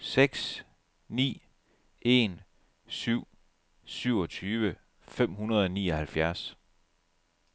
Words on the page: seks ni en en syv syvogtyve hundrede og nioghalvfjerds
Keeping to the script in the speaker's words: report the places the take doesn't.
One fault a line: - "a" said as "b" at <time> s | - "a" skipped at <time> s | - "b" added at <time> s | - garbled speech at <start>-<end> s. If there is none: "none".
- "en" skipped at 2.4 s
- "fem" added at 5.0 s